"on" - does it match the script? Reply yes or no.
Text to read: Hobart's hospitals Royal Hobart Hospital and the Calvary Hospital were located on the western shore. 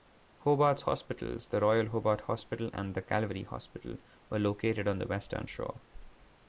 yes